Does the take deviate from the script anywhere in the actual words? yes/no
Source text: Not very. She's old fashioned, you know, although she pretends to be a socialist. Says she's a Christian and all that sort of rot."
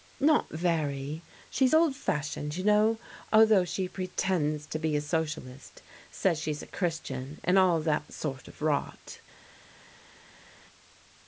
no